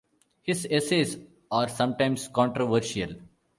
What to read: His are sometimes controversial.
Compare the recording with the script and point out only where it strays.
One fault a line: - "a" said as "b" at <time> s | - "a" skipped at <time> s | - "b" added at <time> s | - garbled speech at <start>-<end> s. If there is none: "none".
- "essays" added at 0.7 s